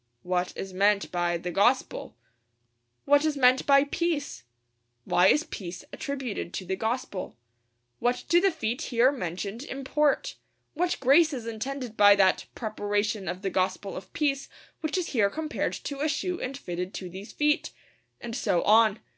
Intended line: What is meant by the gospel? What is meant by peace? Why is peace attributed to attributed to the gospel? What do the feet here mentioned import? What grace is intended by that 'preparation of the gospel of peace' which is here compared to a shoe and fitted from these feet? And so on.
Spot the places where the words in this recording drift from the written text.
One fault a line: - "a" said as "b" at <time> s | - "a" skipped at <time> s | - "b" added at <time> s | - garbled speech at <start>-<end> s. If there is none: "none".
- "attributed to" skipped at 6.7 s
- "from" said as "to" at 16.9 s